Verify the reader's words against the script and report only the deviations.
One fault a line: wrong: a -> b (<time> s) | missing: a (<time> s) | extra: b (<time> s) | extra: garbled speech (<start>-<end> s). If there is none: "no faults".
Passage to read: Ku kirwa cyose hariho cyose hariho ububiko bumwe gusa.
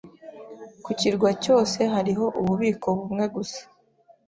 missing: cyose hariho (2.2 s)